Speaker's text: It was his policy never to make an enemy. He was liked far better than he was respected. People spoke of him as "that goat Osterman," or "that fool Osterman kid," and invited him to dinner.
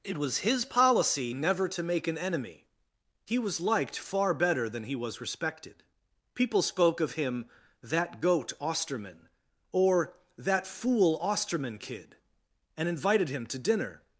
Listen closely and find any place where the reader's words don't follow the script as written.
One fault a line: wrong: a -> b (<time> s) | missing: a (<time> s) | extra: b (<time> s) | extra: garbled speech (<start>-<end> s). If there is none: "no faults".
missing: as (7.5 s)